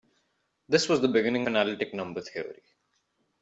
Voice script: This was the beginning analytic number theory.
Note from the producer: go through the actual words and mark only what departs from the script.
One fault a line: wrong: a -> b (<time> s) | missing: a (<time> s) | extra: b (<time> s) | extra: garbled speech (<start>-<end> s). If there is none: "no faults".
no faults